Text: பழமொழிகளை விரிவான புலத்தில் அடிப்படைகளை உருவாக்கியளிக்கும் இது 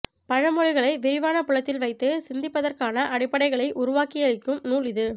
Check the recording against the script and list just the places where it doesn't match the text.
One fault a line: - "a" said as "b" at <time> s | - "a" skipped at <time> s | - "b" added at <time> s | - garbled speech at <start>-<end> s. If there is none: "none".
- "வைத்து சிந்திப்பதற்கான" added at 1.8 s
- "நூல்" added at 4.7 s